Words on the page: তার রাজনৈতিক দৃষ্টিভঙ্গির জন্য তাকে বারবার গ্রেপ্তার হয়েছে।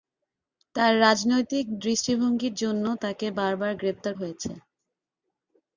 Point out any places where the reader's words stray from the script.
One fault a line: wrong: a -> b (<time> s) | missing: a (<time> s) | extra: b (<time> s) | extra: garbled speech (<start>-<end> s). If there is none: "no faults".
no faults